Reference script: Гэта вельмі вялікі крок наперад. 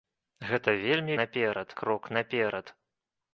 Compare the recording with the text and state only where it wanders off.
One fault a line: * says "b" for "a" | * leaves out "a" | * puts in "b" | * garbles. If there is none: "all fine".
* says "наперад" for "вялікі"